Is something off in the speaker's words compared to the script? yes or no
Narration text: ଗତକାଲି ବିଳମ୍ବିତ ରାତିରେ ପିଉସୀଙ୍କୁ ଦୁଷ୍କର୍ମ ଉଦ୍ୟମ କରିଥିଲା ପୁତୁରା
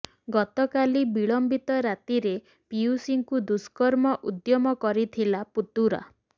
no